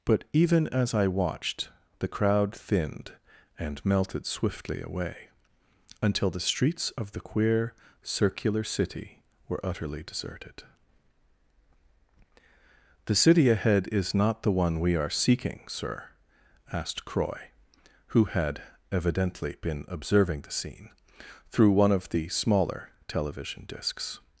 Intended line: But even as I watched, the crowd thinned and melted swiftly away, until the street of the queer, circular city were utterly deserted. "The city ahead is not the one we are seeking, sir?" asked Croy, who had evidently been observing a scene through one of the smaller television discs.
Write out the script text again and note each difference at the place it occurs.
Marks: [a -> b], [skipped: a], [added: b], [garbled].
But even as I watched, the crowd thinned and melted swiftly away, until the [street -> streets] of the queer, circular city were utterly deserted. "The city ahead is not the one we are seeking, sir?" asked Croy, who had evidently been observing [a -> the] scene through one of the smaller television discs.